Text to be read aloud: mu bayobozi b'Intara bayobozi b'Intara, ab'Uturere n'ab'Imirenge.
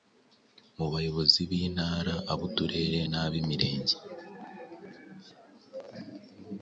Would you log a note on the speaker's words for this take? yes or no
yes